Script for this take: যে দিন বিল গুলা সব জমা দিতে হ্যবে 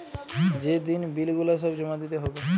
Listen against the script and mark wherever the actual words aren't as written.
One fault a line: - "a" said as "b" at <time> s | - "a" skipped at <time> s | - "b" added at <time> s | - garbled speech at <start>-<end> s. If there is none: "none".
none